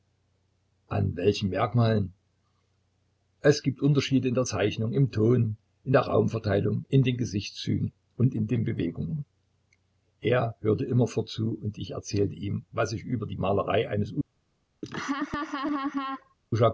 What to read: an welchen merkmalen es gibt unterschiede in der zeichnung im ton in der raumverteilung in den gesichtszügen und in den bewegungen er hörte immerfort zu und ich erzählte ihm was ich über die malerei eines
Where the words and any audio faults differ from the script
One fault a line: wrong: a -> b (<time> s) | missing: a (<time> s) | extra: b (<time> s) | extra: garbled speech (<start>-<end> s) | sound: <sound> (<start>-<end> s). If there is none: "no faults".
sound: laugh (14.8-16.3 s)